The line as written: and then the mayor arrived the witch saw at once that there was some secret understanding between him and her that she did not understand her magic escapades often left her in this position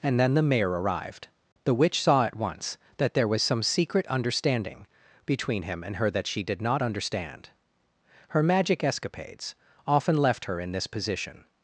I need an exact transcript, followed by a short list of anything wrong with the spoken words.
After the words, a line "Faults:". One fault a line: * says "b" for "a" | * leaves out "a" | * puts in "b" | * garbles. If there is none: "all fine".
and then the mayor arrived the witch saw at once that there was some secret understanding between him and her that she did not understand her magic escapades often left her in this position
Faults:
all fine